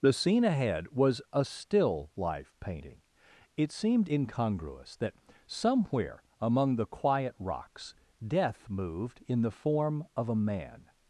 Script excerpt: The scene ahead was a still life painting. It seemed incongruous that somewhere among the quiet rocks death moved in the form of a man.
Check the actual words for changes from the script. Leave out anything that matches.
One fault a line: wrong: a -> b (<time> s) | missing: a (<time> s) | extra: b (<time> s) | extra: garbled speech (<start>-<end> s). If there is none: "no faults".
no faults